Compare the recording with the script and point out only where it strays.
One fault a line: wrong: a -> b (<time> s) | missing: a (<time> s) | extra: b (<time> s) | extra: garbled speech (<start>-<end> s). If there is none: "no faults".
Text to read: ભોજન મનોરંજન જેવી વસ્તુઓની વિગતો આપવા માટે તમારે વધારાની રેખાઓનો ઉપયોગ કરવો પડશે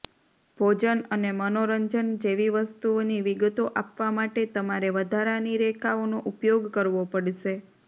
extra: અને (1.1 s)